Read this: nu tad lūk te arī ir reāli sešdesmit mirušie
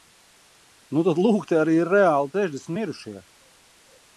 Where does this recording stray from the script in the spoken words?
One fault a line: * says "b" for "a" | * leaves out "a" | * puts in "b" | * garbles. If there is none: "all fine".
all fine